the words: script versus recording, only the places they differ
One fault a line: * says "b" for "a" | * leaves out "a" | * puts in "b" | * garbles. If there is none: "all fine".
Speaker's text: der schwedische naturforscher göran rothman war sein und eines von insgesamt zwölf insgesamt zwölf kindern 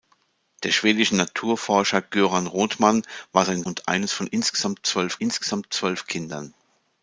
all fine